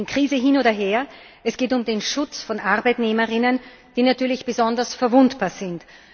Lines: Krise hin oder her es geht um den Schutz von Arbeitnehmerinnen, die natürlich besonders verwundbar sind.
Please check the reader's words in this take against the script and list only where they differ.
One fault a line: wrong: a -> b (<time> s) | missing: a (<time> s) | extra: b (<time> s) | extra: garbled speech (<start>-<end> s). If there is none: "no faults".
no faults